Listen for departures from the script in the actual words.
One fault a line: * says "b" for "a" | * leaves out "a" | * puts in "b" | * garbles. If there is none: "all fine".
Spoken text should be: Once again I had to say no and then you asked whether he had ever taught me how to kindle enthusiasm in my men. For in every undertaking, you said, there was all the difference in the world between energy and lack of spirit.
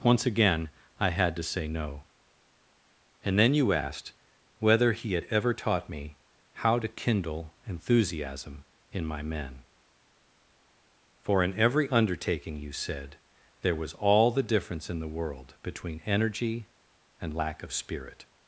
all fine